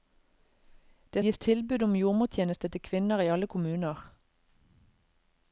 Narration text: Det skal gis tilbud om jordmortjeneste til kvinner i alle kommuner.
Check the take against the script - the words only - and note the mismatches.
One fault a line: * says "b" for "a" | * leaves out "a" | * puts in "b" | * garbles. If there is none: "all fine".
* leaves out "skal"